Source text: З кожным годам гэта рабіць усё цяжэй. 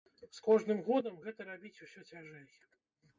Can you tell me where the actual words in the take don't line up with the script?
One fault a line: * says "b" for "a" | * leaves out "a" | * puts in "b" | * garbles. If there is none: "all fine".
all fine